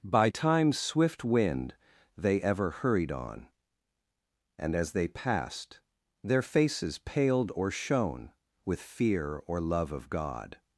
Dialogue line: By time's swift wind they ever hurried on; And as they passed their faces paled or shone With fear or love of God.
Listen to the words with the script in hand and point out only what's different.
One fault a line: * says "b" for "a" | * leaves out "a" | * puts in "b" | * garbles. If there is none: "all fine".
all fine